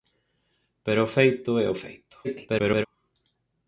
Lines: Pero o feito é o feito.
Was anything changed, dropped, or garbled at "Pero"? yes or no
no